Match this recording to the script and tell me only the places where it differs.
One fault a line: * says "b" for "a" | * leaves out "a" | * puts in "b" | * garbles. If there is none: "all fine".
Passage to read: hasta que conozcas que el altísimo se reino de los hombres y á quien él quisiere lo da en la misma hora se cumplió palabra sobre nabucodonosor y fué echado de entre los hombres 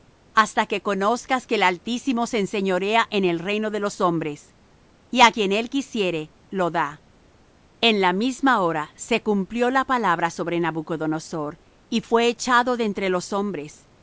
* puts in "enseñorea en el"
* puts in "la"